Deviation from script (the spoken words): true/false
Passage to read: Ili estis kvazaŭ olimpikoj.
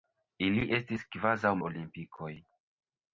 false